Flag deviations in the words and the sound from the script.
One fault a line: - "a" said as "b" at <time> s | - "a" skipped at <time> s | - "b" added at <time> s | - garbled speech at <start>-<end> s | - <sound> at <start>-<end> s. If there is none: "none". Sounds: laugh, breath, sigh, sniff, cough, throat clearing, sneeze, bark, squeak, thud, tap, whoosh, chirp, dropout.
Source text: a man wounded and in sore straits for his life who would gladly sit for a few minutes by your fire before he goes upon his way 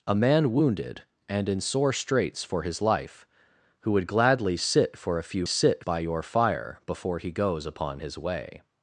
- "minutes" said as "sit" at 5.4 s